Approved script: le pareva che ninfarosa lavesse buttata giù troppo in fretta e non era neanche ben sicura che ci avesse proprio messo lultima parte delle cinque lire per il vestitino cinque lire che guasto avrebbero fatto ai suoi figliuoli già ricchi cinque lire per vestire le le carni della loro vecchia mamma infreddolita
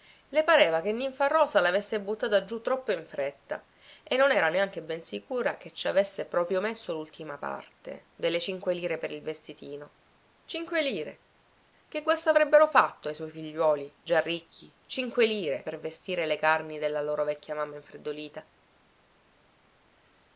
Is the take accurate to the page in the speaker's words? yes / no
no